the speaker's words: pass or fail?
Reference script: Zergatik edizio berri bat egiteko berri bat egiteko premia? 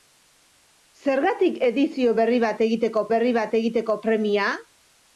pass